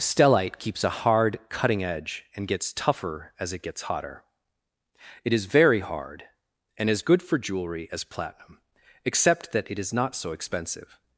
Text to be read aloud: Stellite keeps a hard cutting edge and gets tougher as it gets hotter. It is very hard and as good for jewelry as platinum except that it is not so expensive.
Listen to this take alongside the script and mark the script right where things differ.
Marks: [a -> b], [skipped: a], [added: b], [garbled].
Stellite keeps a hard cutting edge and gets tougher as it gets hotter. It is very hard and as good for jewelry as platinum except that it is not so expensive.